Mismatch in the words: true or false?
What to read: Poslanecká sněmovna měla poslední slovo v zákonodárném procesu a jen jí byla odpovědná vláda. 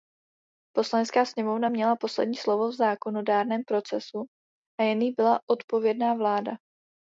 false